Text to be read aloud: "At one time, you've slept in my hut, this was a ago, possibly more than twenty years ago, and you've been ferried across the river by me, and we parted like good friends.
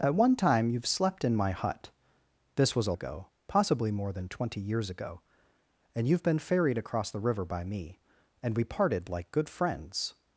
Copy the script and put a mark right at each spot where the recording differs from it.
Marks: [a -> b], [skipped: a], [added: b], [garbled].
"At one time, you've slept in my hut, this was a ago, possibly more than twenty years ago, and you've been ferried across the river by me, and we parted like good friends.